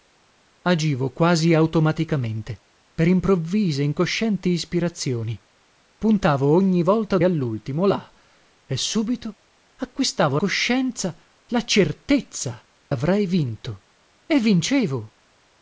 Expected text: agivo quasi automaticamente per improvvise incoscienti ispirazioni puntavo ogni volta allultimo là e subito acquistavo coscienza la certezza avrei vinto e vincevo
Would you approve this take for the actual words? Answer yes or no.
yes